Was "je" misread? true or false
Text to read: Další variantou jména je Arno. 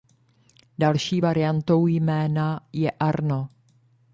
false